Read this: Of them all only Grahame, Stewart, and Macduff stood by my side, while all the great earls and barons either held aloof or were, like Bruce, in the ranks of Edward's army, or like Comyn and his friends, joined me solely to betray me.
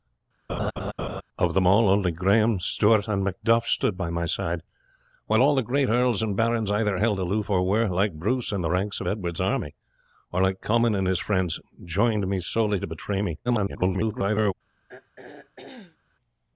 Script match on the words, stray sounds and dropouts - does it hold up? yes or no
no